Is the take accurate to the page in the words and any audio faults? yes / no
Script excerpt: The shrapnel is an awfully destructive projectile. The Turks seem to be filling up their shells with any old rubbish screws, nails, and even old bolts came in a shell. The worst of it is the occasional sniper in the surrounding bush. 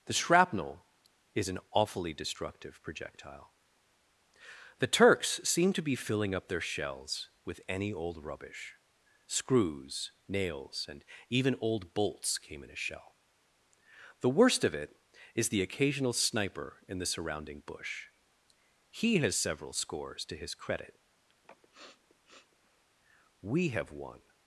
no